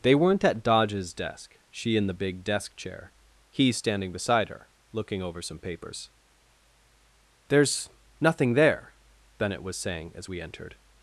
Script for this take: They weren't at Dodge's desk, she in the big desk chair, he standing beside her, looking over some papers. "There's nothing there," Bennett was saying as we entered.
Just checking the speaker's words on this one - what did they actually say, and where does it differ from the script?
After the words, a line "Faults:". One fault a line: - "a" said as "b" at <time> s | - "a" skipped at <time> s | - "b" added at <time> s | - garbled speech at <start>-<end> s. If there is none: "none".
They weren't at Dodge's desk, she in the big desk chair, he standing beside her, looking over some papers. "There's nothing there," Bennett was saying as we entered.
Faults:
none